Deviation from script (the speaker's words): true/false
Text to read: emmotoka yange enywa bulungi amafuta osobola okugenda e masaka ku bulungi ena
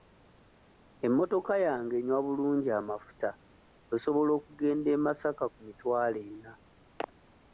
true